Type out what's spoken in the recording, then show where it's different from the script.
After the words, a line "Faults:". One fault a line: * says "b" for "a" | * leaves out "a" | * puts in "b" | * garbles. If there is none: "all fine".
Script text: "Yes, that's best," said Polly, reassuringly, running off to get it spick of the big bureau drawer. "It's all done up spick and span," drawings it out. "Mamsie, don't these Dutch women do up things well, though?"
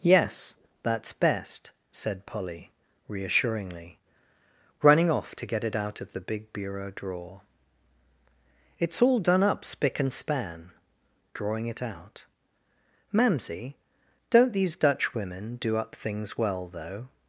"Yes, that's best," said Polly, reassuringly, running off to get it out of the big bureau drawer. "It's all done up spick and span," drawing it out. "Mamsie, don't these Dutch women do up things well, though?"
Faults:
* says "out" for "spick"
* says "drawing" for "drawings"